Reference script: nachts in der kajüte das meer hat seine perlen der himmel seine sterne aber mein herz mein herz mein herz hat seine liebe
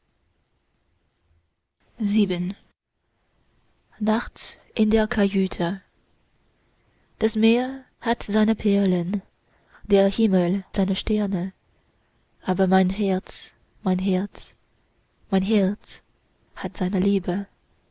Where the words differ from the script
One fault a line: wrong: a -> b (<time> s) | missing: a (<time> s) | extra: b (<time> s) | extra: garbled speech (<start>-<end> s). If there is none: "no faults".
no faults